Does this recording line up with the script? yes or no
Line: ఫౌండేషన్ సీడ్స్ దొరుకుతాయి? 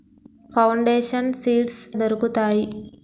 yes